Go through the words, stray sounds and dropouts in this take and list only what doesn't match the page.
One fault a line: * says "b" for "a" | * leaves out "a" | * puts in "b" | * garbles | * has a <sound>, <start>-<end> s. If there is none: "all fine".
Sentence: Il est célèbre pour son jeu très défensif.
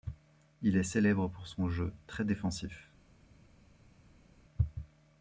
all fine